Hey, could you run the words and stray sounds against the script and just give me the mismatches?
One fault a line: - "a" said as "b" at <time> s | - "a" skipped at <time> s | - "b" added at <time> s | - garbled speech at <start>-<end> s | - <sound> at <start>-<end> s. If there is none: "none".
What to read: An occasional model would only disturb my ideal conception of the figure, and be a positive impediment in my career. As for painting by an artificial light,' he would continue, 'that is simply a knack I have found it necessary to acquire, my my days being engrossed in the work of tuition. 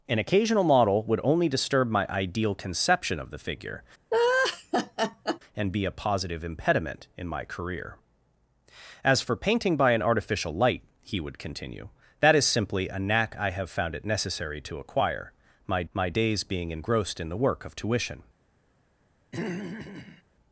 - laugh at 4.1-5.4 s
- throat clearing at 19.3-20.2 s